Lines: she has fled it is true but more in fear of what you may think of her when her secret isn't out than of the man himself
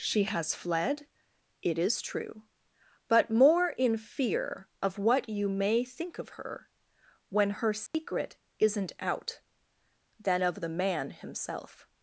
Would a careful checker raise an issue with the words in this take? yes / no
no